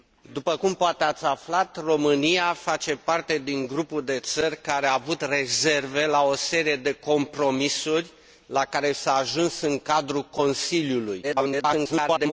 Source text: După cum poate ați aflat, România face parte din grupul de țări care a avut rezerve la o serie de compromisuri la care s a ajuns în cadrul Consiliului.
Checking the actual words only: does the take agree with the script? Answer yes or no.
no